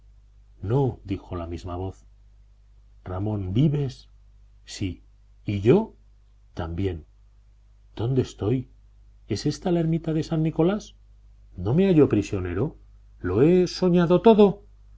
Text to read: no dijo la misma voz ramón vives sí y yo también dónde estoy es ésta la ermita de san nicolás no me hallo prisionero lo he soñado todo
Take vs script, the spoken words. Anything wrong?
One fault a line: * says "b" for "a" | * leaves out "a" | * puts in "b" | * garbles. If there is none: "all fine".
all fine